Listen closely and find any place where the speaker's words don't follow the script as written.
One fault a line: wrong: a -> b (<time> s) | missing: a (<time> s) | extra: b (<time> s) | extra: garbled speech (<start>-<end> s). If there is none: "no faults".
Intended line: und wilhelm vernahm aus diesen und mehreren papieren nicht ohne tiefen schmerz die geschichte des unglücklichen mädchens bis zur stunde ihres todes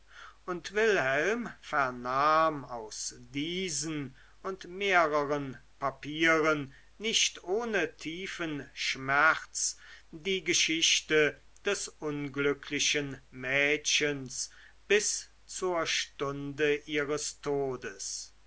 no faults